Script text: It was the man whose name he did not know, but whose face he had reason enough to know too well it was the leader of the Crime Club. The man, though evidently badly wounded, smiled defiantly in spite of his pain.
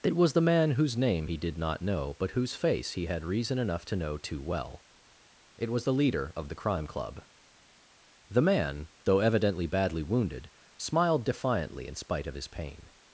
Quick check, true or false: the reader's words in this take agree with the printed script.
true